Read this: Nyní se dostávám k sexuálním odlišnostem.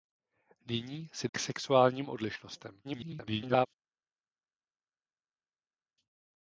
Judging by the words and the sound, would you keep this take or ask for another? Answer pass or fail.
fail